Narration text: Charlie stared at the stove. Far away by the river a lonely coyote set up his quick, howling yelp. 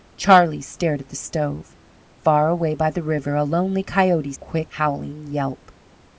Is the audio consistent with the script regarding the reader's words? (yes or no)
no